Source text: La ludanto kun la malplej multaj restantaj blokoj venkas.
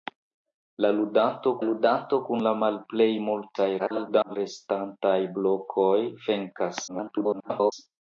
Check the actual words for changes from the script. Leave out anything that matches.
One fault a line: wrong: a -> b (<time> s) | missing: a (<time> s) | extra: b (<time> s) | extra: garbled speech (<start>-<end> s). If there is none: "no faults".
extra: ludanto (1.7 s)
extra: garbled speech (3.8-4.4 s)
extra: garbled speech (6.9-7.7 s)